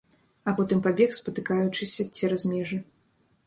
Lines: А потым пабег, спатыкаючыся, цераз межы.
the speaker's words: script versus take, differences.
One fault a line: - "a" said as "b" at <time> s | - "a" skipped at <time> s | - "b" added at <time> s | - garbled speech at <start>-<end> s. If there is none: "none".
none